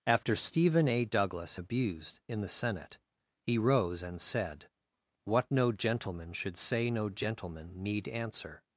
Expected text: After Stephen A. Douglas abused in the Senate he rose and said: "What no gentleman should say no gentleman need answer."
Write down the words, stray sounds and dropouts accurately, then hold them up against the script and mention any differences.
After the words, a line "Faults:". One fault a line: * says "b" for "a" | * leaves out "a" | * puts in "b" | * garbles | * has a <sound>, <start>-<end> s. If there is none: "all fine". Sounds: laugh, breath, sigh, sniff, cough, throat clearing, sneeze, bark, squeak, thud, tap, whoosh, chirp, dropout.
After Stephen A. Douglas abused in the Senate he rose and said: "What no gentleman should say no gentleman need answer."
Faults:
all fine